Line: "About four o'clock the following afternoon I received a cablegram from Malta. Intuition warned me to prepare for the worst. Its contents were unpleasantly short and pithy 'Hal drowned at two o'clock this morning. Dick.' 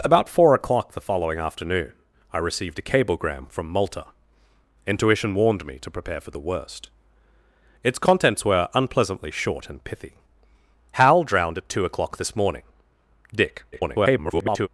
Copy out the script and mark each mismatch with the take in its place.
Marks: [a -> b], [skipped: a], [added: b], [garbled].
"About four o'clock the following afternoon I received a cablegram from Malta. Intuition warned me to prepare for the worst. Its contents were unpleasantly short and pithy 'Hal drowned at two o'clock this morning. Dick.' [garbled]